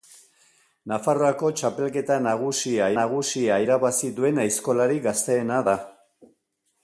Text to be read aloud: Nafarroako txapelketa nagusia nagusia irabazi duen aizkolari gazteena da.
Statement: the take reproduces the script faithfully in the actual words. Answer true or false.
true